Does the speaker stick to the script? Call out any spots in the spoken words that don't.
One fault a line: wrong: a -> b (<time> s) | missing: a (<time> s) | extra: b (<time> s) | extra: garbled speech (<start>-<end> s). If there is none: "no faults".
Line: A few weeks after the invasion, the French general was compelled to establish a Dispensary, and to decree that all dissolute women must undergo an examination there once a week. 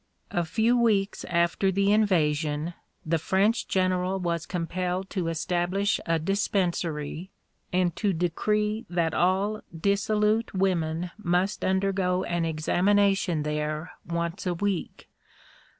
no faults